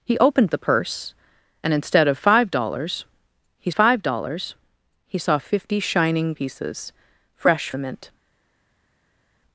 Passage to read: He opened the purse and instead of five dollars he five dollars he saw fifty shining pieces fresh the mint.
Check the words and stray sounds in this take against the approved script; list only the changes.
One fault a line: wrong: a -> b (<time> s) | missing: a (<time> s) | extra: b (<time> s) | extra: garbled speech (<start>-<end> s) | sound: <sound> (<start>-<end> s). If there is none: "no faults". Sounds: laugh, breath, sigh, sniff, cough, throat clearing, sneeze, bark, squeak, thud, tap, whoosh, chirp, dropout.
no faults